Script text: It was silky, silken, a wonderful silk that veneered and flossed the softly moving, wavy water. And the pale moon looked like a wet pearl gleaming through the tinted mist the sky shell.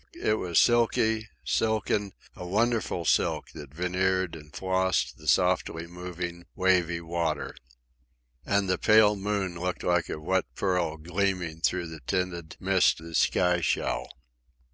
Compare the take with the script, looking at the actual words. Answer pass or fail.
pass